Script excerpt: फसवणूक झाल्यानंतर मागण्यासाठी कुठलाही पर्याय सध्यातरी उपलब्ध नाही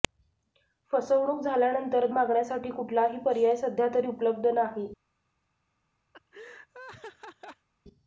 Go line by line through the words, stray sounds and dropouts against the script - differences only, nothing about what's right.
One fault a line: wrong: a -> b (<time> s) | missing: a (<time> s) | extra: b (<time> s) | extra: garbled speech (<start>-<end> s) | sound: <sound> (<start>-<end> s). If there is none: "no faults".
sound: laugh (6.1-7.7 s)